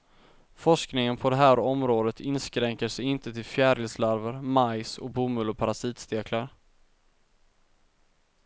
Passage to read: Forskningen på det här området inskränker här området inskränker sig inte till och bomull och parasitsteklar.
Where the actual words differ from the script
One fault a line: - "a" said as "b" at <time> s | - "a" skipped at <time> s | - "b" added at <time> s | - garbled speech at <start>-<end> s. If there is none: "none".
- "här området inskränker" skipped at 2.9 s
- "fjärilslarver majs" added at 3.5 s